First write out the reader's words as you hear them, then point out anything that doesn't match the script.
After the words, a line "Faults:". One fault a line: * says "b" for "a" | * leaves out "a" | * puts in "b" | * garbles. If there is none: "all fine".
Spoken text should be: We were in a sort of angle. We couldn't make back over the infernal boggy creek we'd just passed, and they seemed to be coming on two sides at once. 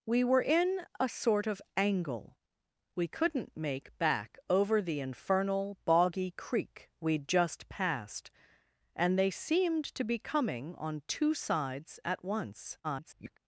We were in a sort of angle. We couldn't make back over the infernal boggy creek we'd just passed, and they seemed to be coming on two sides at once. [garbled]
Faults:
* garbles